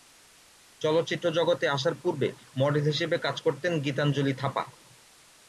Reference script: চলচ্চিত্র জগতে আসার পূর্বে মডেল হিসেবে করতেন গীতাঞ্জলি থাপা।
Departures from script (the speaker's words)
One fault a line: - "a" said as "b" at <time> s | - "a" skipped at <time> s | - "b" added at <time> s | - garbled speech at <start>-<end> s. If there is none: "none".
- "কাজ" added at 3.2 s